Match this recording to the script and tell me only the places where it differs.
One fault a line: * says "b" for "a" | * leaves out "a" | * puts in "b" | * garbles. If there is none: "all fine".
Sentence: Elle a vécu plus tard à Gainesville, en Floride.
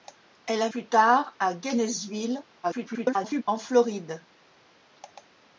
* leaves out "vécu"
* garbles